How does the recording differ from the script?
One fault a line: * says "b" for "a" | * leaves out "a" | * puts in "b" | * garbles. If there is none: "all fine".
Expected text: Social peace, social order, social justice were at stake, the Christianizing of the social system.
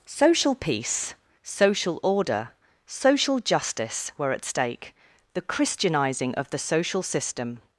all fine